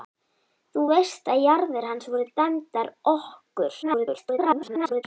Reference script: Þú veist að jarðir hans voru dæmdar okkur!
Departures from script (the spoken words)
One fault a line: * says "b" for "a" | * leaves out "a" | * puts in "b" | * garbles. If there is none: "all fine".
* garbles